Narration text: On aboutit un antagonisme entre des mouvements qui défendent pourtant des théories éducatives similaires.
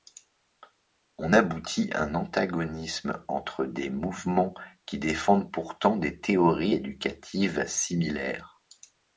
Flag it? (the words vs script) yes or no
no